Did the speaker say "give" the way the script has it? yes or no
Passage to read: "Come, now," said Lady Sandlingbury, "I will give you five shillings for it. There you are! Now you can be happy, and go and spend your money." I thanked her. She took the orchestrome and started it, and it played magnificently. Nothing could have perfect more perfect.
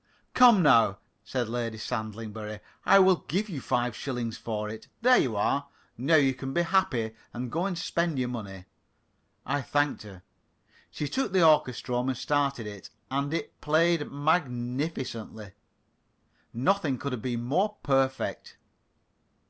yes